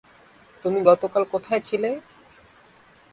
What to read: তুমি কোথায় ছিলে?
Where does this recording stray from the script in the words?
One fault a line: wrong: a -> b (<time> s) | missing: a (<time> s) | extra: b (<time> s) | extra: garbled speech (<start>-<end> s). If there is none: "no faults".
extra: গতকাল (0.8 s)